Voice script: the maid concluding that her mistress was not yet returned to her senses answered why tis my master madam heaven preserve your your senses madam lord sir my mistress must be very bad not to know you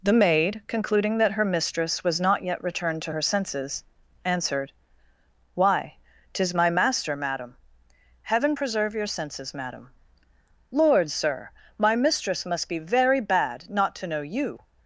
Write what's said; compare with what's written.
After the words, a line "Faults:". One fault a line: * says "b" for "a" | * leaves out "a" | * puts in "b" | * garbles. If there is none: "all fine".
the maid concluding that her mistress was not yet returned to her senses answered why tis my master madam heaven preserve your senses madam lord sir my mistress must be very bad not to know you
Faults:
* leaves out "your"